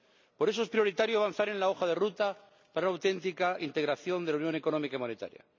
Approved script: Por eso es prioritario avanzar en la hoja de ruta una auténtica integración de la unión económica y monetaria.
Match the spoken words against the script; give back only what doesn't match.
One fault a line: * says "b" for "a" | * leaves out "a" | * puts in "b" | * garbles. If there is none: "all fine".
* puts in "para"